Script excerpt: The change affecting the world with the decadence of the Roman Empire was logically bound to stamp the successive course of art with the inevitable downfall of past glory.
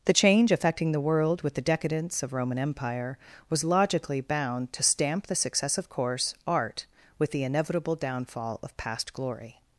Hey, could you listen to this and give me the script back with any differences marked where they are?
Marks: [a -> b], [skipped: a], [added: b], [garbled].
The change affecting the world with the decadence of [skipped: the] Roman Empire was logically bound to stamp the successive course [skipped: of] art with the inevitable downfall of past glory.